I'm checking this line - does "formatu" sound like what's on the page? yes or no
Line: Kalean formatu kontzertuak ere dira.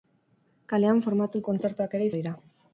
yes